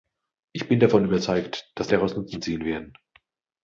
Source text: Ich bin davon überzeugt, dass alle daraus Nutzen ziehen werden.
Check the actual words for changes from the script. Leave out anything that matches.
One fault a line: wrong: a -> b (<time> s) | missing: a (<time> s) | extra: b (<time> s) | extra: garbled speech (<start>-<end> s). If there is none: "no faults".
missing: alle (1.9 s)